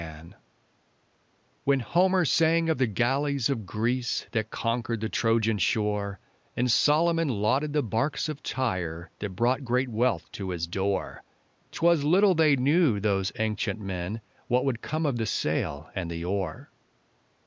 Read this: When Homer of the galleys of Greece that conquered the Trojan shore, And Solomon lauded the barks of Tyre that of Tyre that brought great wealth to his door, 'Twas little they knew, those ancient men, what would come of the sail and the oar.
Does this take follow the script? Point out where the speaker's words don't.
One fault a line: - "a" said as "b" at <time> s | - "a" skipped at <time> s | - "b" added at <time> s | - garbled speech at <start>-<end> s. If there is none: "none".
- "sang" added at 2.2 s
- "of Tyre that" skipped at 9.3 s